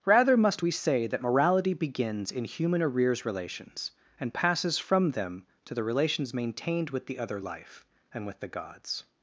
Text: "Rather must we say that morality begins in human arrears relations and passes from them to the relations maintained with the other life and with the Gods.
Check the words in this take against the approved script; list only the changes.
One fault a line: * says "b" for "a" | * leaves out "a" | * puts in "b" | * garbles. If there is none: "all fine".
all fine